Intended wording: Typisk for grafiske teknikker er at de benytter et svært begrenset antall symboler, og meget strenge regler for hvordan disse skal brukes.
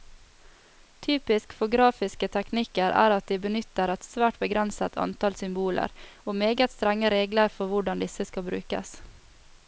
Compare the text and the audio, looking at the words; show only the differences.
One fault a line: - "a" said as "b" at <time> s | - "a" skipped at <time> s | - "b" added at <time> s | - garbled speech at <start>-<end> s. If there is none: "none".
none